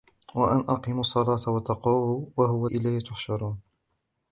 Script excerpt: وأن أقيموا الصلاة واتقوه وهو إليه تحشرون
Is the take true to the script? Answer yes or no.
yes